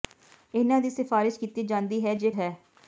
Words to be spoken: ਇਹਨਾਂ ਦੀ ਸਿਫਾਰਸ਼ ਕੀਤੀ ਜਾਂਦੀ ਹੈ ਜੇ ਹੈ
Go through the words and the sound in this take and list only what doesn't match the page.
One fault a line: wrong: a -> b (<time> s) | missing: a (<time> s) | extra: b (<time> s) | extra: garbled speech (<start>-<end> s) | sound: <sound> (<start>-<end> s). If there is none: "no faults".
no faults